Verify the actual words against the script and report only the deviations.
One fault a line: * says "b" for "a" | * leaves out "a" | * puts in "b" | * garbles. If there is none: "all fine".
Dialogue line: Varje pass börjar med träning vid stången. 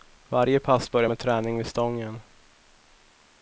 all fine